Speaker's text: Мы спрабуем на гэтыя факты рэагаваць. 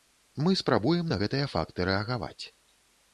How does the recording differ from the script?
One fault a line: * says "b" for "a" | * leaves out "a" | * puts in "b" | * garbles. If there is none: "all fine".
all fine